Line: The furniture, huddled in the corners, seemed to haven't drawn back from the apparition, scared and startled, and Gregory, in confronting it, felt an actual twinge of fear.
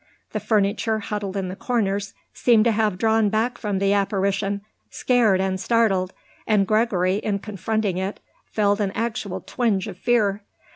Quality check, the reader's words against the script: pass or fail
fail